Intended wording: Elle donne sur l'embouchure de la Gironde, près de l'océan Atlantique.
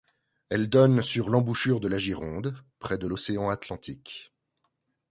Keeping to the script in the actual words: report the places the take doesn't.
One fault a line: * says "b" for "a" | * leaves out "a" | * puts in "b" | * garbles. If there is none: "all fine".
all fine